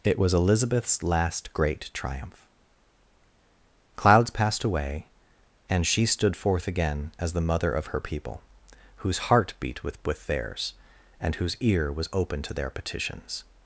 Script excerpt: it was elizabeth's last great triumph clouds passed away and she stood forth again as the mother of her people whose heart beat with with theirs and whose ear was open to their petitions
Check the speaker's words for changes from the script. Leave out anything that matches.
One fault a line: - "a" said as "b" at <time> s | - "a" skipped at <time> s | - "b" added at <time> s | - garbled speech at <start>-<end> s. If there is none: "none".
none